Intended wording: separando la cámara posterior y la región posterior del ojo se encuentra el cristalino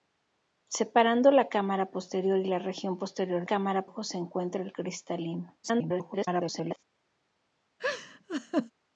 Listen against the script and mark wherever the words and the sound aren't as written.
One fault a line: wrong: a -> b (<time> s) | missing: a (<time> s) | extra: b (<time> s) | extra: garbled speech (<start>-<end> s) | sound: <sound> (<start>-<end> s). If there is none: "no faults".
wrong: del -> cámara (3.4 s)
extra: garbled speech (5.6-6.8 s)
sound: laugh (7.8-8.7 s)